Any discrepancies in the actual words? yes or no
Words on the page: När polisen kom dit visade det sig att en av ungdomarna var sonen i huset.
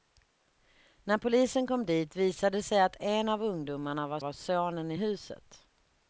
yes